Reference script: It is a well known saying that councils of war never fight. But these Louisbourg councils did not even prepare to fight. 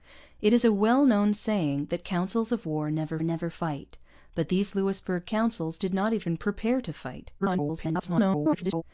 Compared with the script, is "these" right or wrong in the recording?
right